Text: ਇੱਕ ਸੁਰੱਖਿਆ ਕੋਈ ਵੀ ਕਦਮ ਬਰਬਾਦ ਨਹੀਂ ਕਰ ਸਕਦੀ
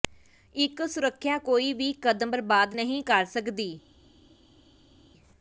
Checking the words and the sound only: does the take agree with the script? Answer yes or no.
yes